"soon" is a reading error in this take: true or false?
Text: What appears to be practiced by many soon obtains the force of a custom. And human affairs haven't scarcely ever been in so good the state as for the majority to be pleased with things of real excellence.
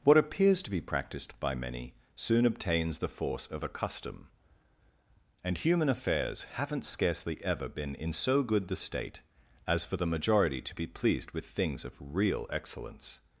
false